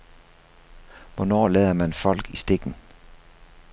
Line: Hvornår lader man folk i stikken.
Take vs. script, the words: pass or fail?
pass